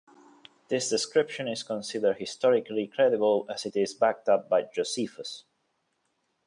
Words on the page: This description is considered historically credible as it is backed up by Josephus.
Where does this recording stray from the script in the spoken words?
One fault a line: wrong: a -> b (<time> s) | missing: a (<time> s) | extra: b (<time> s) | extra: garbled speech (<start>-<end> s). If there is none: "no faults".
no faults